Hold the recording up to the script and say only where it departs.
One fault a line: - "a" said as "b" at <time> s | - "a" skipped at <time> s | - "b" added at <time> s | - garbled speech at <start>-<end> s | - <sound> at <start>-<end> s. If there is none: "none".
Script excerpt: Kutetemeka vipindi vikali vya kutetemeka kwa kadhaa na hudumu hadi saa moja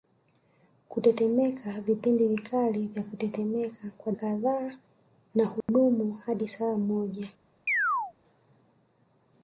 - dropout at 5.6-5.7 s
- chirp at 7.7-8.1 s